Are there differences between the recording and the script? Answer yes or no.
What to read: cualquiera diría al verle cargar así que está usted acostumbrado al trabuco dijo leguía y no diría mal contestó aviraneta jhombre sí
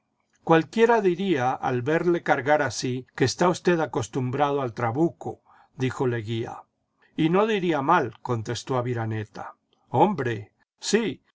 no